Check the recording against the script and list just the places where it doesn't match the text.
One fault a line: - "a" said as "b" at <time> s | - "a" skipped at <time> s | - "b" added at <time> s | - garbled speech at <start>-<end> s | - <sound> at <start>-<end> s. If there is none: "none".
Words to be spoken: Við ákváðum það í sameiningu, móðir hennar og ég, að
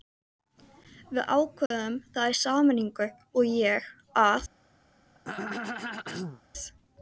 - dropout at 1.7-1.7 s
- "móðir hennar" skipped at 3.1 s
- throat clearing at 5.2-6.4 s